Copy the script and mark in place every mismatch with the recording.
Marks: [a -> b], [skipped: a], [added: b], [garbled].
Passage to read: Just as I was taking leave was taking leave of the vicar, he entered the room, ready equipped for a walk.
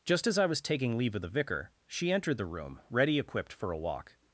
Just as I was taking leave [skipped: was taking leave] of the vicar, [he -> she] entered the room, ready equipped for a walk.